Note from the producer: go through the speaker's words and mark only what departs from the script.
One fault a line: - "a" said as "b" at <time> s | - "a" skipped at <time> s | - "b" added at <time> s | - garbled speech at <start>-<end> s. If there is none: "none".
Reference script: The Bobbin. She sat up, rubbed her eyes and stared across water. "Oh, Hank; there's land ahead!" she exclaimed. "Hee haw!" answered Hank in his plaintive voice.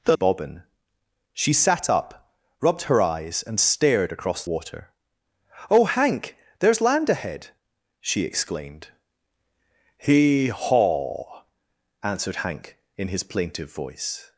none